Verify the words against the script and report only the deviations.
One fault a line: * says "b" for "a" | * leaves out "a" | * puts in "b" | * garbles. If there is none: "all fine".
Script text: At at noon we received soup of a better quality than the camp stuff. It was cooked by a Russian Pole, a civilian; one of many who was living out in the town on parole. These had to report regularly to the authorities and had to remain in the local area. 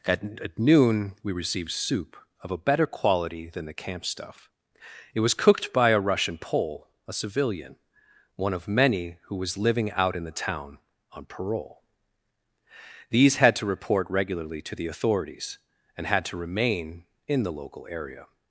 all fine